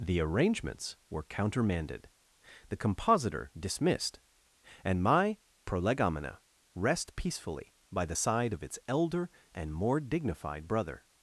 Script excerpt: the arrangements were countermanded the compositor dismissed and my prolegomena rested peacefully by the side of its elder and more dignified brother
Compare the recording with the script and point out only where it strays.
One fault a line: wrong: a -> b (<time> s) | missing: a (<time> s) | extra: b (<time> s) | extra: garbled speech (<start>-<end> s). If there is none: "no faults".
wrong: rested -> rest (6.7 s)